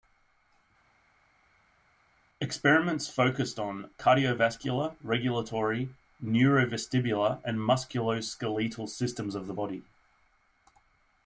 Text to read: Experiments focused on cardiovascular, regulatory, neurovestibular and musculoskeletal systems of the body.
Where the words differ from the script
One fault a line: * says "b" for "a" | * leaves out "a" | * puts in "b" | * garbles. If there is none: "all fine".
all fine